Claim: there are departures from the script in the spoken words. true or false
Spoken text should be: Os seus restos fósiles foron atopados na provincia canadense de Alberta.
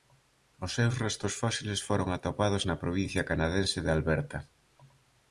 false